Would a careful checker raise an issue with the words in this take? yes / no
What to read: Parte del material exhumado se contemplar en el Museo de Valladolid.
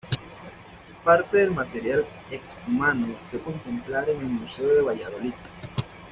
no